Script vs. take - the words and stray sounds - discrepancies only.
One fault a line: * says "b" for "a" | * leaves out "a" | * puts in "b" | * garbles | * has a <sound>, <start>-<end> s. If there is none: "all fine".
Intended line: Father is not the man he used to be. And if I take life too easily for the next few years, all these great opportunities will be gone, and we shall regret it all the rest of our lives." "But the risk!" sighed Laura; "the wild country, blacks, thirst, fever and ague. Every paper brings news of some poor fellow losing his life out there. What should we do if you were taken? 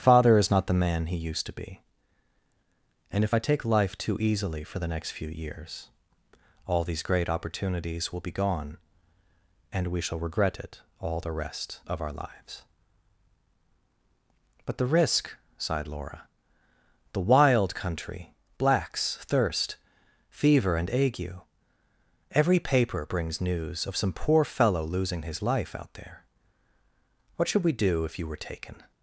all fine